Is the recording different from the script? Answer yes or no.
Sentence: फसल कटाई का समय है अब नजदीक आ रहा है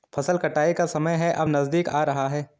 no